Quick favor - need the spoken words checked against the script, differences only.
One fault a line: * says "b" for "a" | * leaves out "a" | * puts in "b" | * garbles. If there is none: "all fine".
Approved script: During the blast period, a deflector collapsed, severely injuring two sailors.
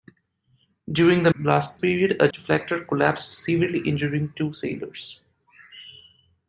all fine